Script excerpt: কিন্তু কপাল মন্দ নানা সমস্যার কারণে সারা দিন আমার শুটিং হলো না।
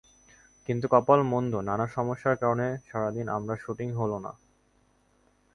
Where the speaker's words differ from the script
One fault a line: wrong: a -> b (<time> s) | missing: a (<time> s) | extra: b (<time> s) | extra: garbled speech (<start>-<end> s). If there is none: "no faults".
no faults